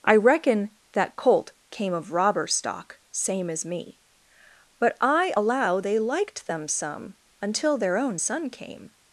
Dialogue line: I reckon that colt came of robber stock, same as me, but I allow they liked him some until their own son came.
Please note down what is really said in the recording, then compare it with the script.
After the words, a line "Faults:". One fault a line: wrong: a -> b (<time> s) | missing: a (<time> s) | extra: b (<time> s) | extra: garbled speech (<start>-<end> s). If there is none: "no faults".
I reckon that colt came of robber stock, same as me, but I allow they liked them some until their own son came.
Faults:
wrong: him -> them (6.5 s)